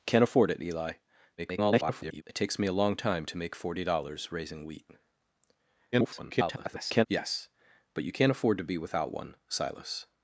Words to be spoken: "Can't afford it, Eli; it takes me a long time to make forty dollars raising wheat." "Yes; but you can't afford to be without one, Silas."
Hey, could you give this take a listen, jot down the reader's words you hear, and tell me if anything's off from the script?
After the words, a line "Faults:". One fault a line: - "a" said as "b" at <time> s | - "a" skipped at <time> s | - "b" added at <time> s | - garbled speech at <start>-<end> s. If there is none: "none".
"Can't afford it, Eli; [garbled] it takes me a long time to make forty dollars raising wheat." [garbled] "Yes; but you can't afford to be without one, Silas."
Faults:
- garbled speech at 1.4-2.2 s
- garbled speech at 5.9-7.1 s